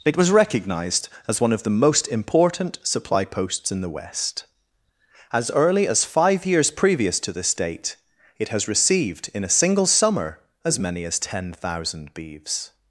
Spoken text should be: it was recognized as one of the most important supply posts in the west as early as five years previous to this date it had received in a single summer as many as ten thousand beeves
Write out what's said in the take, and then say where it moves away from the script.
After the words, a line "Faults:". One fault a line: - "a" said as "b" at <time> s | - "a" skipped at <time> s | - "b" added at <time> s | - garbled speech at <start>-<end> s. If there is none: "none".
it was recognized as one of the most important supply posts in the west as early as five years previous to this date it has received in a single summer as many as ten thousand beeves
Faults:
- "had" said as "has" at 8.5 s